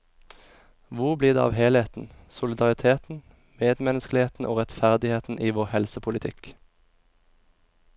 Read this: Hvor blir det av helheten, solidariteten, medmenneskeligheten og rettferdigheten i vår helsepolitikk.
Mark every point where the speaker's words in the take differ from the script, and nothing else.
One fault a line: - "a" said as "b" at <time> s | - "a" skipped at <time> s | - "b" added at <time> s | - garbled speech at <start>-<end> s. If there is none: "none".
none